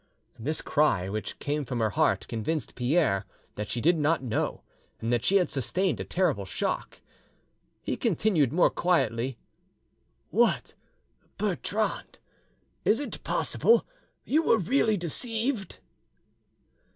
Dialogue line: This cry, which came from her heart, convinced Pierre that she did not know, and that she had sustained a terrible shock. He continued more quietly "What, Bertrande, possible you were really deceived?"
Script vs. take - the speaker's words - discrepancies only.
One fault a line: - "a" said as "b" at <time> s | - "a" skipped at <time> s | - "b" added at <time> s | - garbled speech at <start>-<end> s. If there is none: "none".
- "is it" added at 12.8 s